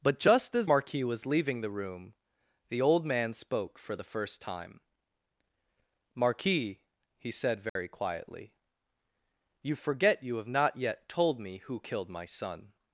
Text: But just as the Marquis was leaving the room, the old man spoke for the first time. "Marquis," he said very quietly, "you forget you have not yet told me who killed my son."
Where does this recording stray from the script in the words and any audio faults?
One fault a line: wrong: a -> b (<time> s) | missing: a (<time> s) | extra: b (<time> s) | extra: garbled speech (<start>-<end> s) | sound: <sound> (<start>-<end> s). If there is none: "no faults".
missing: the (0.7 s)
sound: dropout (7.7-7.8 s)